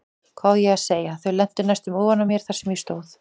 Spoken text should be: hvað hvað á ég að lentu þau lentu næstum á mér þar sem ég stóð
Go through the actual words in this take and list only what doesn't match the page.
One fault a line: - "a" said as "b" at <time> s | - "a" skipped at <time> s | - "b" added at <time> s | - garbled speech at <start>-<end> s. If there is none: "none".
- "hvað" skipped at 0.6 s
- "lentu" said as "segja" at 0.8 s
- "ofan" added at 2.0 s